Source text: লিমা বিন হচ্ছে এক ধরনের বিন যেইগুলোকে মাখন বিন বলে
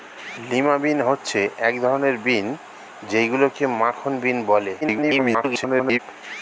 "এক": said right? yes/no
yes